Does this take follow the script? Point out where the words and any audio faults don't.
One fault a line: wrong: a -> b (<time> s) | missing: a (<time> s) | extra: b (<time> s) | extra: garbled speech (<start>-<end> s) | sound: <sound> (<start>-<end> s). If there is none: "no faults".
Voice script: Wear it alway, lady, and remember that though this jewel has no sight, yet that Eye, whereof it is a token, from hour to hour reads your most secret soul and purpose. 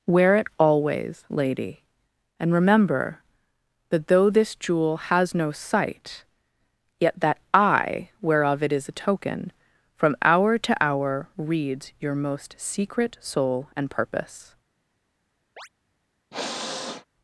wrong: alway -> always (0.6 s)
sound: chirp (15.6-15.7 s)
sound: sniff (16.3-17.1 s)